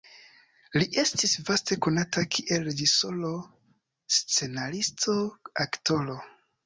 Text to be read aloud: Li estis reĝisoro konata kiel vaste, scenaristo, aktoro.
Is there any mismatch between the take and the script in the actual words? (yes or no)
yes